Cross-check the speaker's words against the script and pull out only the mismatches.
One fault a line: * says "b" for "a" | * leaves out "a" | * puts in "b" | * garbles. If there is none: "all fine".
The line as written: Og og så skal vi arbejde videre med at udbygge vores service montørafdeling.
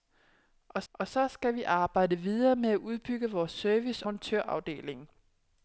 all fine